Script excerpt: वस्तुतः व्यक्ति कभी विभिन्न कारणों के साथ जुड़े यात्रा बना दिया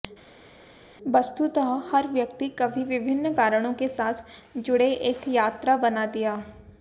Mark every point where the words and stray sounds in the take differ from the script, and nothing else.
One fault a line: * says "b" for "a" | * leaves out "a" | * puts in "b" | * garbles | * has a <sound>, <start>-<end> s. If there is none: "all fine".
* puts in "हर"
* puts in "एक"